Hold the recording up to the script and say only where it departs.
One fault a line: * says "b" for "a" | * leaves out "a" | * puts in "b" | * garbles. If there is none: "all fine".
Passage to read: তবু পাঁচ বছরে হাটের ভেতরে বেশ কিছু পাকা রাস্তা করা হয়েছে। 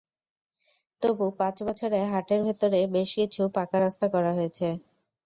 all fine